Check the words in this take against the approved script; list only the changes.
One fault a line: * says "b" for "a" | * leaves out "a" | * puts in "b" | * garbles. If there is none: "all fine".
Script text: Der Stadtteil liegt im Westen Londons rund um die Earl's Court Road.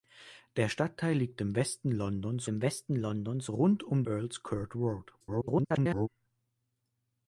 * puts in "im Westen Londons"
* leaves out "die"
* garbles